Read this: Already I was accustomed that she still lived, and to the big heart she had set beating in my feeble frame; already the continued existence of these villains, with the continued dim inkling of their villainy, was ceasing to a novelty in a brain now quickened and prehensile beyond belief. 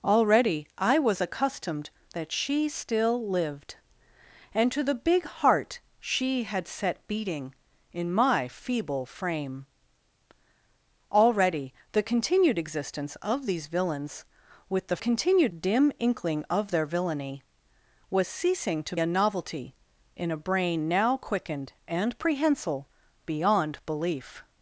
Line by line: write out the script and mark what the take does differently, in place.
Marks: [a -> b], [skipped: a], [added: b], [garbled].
Already I was accustomed that she still lived, and to the big heart she had set beating in my feeble frame; already the continued existence of these villains, with the continued dim inkling of their villainy, was ceasing to a novelty in a brain now quickened and prehensile beyond belief.